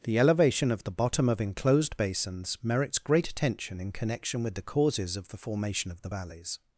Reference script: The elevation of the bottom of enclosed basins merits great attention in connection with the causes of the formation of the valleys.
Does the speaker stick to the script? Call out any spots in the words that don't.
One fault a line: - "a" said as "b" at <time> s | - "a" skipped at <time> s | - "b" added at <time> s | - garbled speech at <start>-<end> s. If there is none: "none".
none